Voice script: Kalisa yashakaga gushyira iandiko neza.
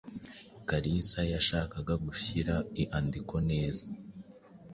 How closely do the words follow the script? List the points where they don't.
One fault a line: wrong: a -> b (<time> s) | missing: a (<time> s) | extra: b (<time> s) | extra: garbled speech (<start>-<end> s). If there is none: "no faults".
no faults